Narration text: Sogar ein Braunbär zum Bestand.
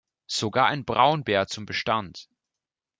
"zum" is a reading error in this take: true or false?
false